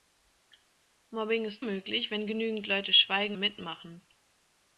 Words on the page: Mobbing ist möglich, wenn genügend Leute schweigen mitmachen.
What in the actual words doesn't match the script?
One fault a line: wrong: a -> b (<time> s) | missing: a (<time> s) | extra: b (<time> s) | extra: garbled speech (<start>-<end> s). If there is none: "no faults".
no faults